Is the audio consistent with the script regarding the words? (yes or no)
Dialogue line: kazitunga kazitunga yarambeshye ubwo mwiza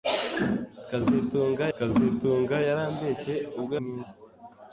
yes